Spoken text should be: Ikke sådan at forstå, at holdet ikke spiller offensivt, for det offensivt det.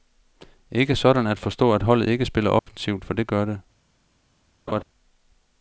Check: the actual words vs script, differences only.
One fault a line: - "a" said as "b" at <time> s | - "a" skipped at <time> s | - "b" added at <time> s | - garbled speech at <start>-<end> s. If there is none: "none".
- "offensivt" said as "gør" at 3.3 s